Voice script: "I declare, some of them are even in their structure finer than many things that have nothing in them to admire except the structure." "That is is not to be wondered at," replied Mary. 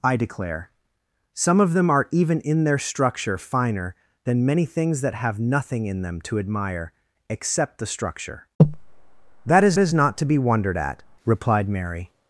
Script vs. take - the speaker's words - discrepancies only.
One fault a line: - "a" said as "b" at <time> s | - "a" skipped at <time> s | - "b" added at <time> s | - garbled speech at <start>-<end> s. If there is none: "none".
none